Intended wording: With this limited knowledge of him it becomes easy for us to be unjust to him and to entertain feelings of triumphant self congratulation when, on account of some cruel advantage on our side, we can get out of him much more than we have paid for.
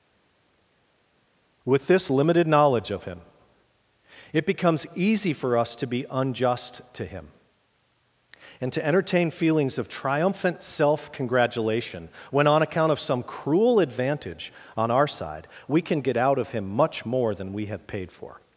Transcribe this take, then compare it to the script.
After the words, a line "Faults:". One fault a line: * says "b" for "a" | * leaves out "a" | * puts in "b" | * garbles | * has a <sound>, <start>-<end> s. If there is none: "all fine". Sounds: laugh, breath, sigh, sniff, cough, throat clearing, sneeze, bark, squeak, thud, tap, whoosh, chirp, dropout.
With this limited knowledge of him it becomes easy for us to be unjust to him and to entertain feelings of triumphant self congratulation when, on account of some cruel advantage on our side, we can get out of him much more than we have paid for.
Faults:
all fine